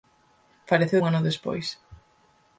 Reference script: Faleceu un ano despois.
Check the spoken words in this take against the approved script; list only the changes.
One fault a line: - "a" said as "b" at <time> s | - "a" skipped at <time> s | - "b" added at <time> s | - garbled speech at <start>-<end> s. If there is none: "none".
none